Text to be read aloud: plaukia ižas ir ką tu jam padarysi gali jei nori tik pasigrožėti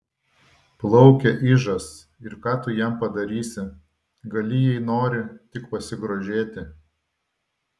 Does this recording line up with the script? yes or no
yes